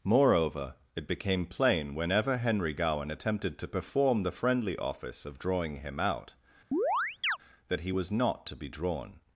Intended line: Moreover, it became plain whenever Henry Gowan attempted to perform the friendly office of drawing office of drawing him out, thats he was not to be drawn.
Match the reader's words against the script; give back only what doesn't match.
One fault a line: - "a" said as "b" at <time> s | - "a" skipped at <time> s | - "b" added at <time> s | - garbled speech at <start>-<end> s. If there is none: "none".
- "office of drawing" skipped at 5.8 s
- "thats" said as "that" at 7.7 s